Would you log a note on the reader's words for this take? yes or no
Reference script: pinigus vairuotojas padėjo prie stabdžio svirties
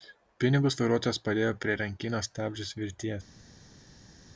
yes